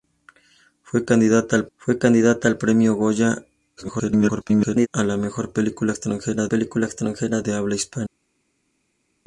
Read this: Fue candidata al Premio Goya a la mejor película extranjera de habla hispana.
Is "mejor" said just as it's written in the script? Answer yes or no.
yes